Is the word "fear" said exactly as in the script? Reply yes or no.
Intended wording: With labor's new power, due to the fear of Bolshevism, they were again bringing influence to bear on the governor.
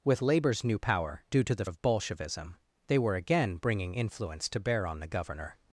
no